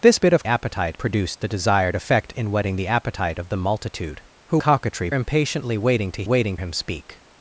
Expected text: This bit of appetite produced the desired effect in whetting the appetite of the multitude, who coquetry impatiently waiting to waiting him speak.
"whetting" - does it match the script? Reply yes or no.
yes